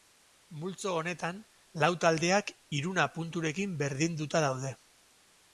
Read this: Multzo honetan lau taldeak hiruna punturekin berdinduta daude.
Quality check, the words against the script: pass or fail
pass